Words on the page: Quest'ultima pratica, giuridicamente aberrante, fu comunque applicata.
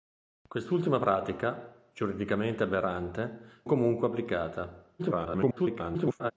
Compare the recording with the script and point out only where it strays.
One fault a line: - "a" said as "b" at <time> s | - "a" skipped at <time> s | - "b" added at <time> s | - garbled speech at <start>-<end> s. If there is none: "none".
- "fu" skipped at 3.6 s
- garbled speech at 5.0-6.3 s